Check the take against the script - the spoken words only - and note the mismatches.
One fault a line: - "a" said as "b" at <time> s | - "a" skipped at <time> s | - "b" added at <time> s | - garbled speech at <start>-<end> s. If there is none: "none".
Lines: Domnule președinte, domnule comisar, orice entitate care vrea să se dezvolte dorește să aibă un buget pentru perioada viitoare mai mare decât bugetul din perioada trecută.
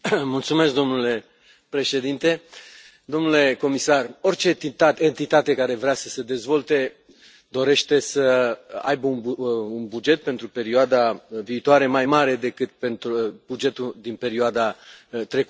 none